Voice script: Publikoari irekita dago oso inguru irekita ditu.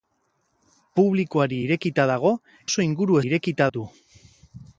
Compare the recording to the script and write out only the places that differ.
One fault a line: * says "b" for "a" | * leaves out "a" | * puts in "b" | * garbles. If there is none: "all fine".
all fine